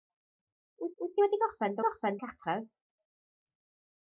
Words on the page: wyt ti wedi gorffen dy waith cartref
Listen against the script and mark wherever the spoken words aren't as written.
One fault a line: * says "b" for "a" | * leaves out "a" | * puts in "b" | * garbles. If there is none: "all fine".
* puts in "wyt"
* says "gorffen" for "waith"